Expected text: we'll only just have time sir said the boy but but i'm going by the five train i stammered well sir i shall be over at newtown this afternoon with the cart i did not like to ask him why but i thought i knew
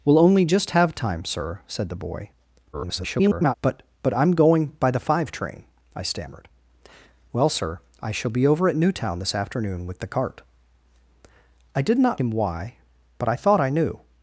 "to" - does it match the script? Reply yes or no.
no